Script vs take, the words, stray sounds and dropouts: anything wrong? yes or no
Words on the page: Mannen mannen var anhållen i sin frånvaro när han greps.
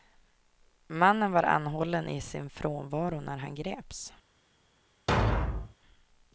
yes